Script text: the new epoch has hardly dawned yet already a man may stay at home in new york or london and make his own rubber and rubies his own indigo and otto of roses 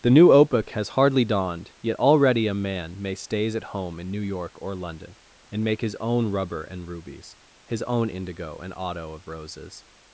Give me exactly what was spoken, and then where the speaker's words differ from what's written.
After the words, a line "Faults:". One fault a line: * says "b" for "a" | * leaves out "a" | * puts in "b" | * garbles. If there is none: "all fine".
the new epoch has hardly dawned yet already a man may stays at home in new york or london and make his own rubber and rubies his own indigo and otto of roses
Faults:
* says "stays" for "stay"